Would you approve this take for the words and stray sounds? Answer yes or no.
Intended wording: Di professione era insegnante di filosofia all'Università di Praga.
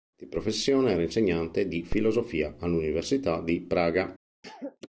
no